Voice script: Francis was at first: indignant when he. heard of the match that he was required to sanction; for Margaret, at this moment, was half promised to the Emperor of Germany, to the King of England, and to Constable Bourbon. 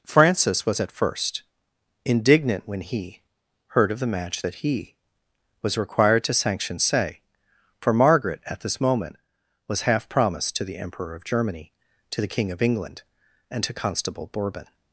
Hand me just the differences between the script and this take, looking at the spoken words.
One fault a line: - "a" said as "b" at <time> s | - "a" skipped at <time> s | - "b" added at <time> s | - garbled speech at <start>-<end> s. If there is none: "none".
- "say" added at 6.8 s